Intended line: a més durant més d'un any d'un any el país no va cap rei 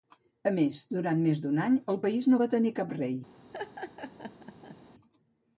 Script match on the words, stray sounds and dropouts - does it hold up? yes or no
no